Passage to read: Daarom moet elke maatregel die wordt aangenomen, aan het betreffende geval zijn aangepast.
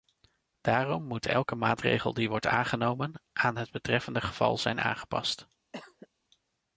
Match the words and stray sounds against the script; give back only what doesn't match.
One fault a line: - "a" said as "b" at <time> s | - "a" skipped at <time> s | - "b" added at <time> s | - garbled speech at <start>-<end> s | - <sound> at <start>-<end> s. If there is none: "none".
- cough at 5.7-6.1 s